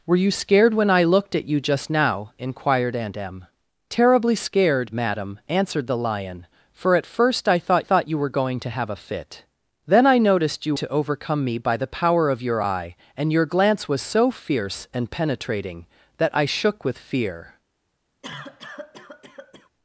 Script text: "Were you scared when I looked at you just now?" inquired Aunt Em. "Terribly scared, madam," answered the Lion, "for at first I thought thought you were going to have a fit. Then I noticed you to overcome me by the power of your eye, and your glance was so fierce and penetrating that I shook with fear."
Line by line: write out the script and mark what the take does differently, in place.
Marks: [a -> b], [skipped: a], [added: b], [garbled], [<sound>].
"Were you scared when I looked at you just now?" inquired Aunt Em. "Terribly scared, madam," answered the Lion, "for at first I thought thought you were going to have a fit. Then I noticed you to overcome me by the power of your eye, and your glance was so fierce and penetrating that I shook with fear." [cough]